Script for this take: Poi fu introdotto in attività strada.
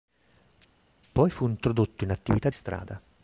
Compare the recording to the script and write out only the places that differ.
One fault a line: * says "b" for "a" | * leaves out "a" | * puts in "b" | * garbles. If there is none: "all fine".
all fine